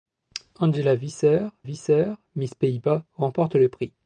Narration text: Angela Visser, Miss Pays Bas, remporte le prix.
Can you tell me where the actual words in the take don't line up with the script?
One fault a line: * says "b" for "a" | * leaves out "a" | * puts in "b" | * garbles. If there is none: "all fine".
* puts in "Visser"